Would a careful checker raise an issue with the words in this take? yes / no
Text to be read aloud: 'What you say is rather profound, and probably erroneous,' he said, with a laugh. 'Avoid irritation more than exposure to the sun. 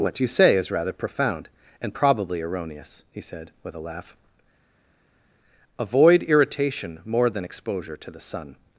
no